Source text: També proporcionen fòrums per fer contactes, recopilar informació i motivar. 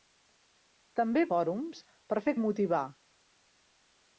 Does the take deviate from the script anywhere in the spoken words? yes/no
yes